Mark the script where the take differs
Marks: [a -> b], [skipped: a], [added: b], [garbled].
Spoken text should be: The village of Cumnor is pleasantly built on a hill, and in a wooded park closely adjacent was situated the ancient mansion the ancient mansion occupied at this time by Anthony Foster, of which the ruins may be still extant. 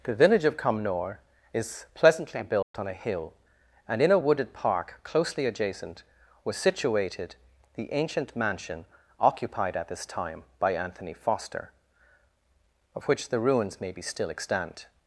The village of Cumnor is pleasantly built on a hill, and in a wooded park closely adjacent was situated the ancient mansion [skipped: the ancient mansion] occupied at this time by Anthony Foster, of which the ruins may be still extant.